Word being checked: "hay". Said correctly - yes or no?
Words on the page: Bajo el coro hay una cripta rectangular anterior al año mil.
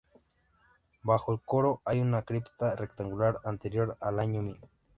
yes